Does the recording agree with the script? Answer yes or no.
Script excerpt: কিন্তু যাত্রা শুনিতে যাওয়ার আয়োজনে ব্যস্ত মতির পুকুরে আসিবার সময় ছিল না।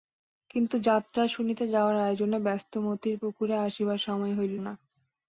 no